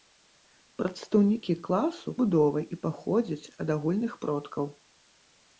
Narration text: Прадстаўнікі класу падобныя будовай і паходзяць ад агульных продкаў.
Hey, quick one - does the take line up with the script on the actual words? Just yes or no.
no